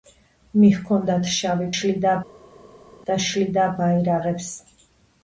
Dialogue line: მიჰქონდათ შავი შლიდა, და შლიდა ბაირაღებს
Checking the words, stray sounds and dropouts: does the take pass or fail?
pass